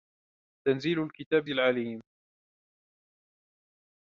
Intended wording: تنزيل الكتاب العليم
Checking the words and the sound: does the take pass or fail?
pass